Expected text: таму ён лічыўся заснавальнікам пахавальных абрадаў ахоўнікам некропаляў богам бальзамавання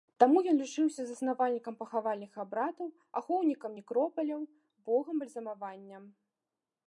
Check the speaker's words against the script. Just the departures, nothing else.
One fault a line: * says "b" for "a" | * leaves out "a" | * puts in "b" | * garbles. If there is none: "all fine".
all fine